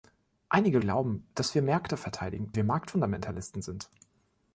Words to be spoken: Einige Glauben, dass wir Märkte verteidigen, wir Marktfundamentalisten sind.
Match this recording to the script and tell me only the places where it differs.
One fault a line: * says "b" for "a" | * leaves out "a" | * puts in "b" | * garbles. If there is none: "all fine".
all fine